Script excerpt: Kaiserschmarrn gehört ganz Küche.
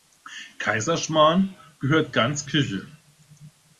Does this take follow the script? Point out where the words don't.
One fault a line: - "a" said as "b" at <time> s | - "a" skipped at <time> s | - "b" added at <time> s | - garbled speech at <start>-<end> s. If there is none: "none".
none